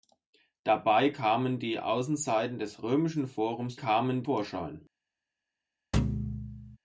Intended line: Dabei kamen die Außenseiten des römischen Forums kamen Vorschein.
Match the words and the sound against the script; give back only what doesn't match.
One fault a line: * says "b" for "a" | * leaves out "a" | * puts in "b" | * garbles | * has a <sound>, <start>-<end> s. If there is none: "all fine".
* has a thud, 5.9-6.8 s